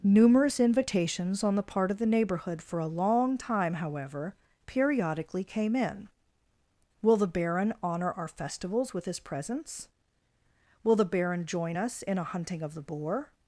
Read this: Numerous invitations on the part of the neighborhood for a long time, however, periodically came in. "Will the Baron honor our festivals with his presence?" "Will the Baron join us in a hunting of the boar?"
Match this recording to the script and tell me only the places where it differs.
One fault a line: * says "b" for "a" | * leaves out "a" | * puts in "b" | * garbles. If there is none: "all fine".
all fine